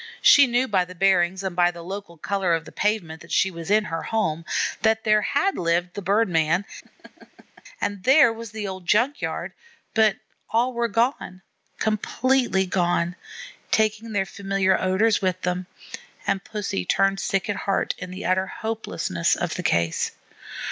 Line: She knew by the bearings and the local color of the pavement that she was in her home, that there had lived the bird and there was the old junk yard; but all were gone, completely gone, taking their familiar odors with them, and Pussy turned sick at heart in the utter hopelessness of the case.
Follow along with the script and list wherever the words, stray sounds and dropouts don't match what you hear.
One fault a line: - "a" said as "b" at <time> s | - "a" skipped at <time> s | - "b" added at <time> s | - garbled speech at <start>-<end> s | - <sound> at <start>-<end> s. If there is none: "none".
- "by" added at 1.6 s
- "man" added at 6.3 s
- laugh at 6.8-7.6 s